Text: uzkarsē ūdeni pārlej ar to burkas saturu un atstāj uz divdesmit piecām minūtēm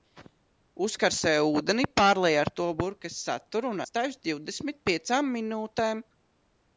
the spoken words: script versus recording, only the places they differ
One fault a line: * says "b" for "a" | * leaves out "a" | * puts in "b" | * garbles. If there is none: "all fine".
all fine